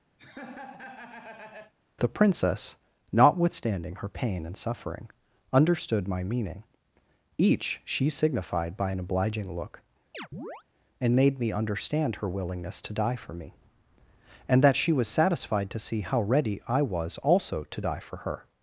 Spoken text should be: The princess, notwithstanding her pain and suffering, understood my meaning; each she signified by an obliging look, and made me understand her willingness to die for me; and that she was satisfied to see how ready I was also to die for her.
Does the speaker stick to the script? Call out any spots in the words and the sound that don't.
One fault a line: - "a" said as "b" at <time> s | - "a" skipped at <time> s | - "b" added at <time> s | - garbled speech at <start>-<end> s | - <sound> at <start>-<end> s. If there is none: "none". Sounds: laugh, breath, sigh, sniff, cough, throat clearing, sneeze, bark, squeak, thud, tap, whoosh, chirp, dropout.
- laugh at 0.2-1.7 s
- chirp at 10.1-10.6 s